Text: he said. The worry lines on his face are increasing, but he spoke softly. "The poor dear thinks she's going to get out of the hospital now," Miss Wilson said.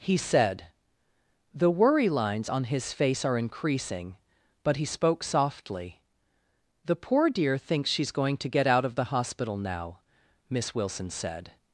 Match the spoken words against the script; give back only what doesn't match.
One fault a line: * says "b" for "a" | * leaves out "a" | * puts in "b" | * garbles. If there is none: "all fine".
all fine